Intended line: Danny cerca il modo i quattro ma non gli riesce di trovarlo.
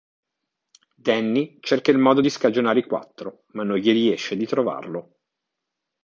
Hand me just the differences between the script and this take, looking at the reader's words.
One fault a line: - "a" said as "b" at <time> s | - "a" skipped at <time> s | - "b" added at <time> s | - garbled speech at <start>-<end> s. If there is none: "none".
- "di scagionare" added at 2.2 s